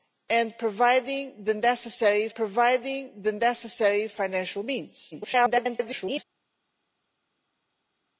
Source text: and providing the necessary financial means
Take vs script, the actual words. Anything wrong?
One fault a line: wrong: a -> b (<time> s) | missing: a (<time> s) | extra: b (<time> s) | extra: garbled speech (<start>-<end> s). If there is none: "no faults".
extra: providing the necessary (2.3 s)
extra: garbled speech (5.1-6.2 s)